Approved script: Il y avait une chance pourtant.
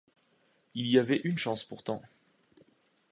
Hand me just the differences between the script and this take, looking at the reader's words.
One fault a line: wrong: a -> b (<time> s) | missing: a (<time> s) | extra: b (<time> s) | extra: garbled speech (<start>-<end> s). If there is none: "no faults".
no faults